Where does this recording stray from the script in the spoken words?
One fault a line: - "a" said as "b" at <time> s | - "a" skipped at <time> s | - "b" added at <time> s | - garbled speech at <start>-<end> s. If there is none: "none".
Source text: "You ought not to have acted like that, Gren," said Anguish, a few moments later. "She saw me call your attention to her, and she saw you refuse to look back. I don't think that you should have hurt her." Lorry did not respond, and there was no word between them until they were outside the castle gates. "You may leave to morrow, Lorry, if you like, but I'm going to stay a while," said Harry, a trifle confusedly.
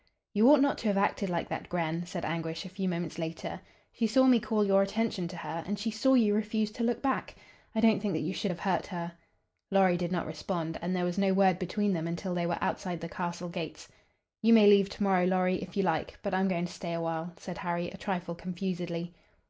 none